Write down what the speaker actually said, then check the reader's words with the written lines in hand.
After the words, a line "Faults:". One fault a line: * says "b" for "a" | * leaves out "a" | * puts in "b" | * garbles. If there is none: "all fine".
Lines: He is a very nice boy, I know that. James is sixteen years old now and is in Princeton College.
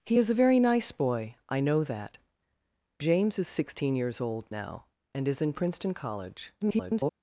He is a very nice boy, I know that. James is sixteen years old now and is in Princeton College. [garbled]
Faults:
* garbles